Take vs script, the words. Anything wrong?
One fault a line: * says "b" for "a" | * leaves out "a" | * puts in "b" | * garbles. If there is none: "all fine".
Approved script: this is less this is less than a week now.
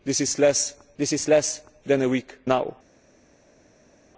all fine